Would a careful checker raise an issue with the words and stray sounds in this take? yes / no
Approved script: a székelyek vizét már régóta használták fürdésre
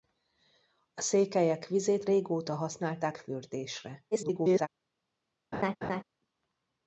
yes